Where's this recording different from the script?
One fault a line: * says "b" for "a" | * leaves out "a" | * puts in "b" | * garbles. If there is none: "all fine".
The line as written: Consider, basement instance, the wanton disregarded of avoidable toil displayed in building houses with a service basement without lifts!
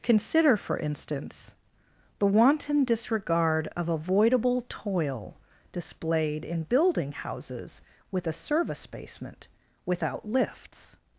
* says "for" for "basement"
* says "disregard" for "disregarded"